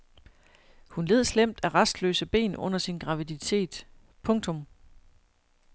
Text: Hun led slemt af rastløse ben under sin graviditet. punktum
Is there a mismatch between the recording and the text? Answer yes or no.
no